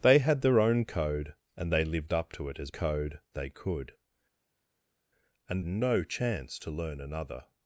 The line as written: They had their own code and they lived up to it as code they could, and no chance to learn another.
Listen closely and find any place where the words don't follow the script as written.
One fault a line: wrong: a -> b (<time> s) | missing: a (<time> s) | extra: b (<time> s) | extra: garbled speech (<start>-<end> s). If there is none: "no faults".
no faults